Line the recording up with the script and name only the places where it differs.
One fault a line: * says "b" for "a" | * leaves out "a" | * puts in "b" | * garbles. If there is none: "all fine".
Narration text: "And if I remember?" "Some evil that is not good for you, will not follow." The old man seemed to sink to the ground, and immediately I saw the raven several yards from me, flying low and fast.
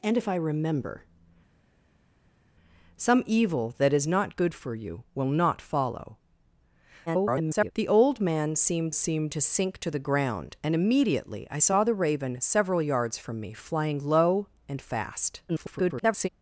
* garbles
* puts in "seemed"
* garbles